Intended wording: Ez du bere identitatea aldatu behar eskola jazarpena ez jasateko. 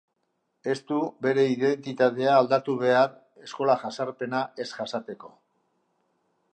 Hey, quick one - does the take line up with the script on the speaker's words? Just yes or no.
yes